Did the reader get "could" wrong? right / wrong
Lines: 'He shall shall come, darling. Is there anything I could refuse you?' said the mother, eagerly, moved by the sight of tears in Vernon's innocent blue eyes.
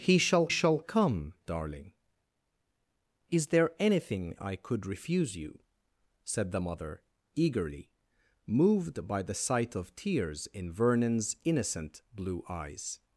right